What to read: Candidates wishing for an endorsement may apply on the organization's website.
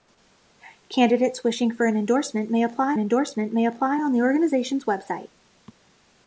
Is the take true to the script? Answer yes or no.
no